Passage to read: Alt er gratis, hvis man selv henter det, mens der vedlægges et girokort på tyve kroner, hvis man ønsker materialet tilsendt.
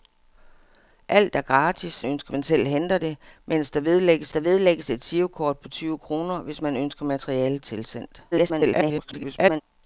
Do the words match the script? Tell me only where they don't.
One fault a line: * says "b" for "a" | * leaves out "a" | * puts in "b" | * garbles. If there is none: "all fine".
* says "ønsker" for "hvis"
* puts in "der vedlægges"
* garbles